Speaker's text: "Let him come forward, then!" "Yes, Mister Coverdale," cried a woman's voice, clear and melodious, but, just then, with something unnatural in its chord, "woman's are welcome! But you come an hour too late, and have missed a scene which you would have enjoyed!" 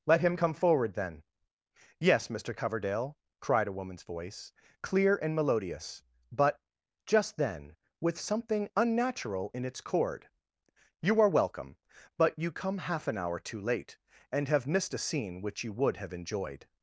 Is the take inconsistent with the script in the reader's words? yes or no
yes